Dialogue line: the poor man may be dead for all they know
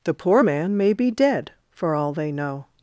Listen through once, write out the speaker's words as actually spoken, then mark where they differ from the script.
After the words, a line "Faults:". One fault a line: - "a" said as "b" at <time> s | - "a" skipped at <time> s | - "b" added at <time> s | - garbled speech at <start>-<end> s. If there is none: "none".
the poor man may be dead for all they know
Faults:
none